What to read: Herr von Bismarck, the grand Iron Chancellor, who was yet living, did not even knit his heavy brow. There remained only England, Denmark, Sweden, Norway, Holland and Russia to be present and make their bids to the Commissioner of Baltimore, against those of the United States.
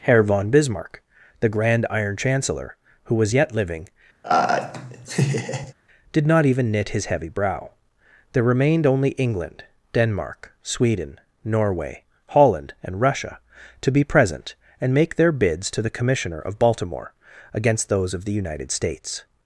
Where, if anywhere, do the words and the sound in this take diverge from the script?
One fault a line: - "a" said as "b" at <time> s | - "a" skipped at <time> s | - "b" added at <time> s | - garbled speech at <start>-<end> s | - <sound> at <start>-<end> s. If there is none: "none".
- laugh at 4.2-5.7 s